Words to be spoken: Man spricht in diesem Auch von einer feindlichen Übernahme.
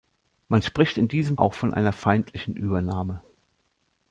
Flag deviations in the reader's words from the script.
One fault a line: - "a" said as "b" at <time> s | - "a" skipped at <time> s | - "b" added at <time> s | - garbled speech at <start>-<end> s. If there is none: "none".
none